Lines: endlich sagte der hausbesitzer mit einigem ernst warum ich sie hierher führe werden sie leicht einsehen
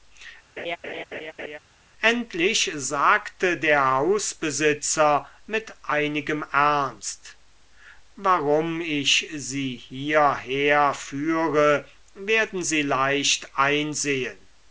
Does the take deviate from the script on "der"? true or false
false